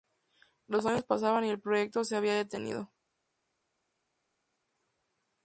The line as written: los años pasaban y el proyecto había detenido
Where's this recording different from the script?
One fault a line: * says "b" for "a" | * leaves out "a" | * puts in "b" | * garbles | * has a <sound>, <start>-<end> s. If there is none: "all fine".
* puts in "se"